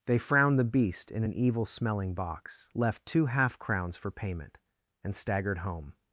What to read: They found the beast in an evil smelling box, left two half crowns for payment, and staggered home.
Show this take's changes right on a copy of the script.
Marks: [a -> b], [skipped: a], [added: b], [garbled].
They [found -> frowned] the beast in an evil smelling box, left two half crowns for payment, and staggered home.